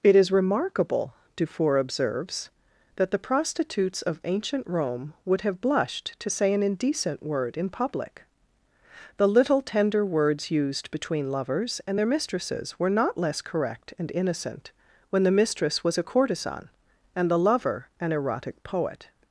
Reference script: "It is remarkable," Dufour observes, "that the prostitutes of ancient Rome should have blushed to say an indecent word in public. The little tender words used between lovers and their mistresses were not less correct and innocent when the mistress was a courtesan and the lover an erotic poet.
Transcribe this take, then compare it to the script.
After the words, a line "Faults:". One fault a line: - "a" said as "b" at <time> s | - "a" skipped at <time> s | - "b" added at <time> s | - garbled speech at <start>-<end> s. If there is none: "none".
"It is remarkable," Dufour observes, "that the prostitutes of ancient Rome would have blushed to say an indecent word in public. The little tender words used between lovers and their mistresses were not less correct and innocent when the mistress was a courtesan and the lover an erotic poet.
Faults:
- "should" said as "would" at 5.3 s